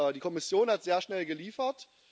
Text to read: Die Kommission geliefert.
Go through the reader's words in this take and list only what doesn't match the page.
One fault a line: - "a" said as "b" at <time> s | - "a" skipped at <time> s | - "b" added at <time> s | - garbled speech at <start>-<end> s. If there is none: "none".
- "hat sehr schnell" added at 0.7 s